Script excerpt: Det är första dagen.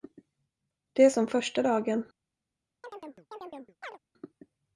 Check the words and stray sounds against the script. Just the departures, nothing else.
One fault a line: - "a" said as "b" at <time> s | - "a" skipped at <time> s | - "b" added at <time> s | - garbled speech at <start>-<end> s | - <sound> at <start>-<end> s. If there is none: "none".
- "som" added at 1.1 s
- chirp at 2.8-4.0 s